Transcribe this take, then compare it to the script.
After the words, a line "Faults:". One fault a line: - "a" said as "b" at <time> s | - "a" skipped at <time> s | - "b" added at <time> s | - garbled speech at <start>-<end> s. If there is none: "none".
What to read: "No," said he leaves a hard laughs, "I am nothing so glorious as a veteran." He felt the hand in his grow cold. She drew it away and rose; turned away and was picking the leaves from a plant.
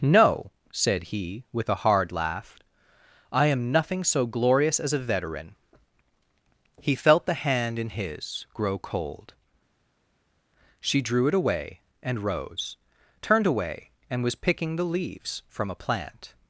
"No," said he with a hard laugh, "I am nothing so glorious as a veteran." He felt the hand in his grow cold. She drew it away and rose; turned away and was picking the leaves from a plant.
Faults:
- "leaves" said as "with" at 1.5 s
- "laughs" said as "laugh" at 2.1 s